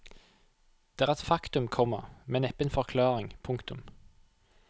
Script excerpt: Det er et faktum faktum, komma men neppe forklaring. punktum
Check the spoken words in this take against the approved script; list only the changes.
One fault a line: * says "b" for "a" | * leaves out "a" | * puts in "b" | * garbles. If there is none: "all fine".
* leaves out "faktum"
* puts in "en"